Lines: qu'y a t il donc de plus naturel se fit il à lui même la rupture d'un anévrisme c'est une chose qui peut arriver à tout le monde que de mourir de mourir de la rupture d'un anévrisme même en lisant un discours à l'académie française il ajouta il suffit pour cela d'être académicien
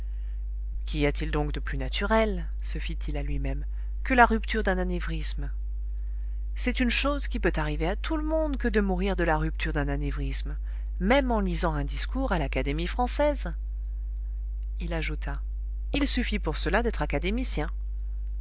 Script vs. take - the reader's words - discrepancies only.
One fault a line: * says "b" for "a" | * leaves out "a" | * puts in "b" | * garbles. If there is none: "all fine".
* puts in "que"
* leaves out "mourir de"